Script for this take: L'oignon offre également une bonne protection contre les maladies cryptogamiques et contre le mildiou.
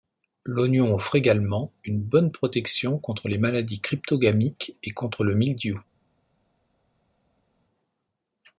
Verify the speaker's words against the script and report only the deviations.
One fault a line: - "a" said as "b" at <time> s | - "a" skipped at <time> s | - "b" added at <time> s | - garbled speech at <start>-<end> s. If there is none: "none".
none